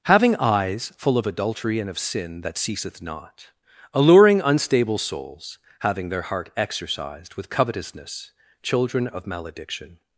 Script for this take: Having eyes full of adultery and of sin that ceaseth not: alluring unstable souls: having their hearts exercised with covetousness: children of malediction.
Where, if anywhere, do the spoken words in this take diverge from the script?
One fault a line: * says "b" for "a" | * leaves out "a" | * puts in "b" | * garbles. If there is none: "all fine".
* says "heart" for "hearts"